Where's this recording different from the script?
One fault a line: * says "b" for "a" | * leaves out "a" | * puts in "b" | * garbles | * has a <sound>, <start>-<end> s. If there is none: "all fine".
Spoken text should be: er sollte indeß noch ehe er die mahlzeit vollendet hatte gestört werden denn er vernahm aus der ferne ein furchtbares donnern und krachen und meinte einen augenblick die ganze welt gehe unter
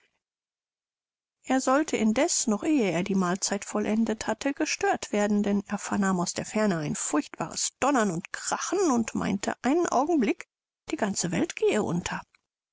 all fine